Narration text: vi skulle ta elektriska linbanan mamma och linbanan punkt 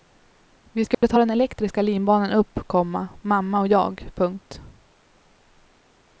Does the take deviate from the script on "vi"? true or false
false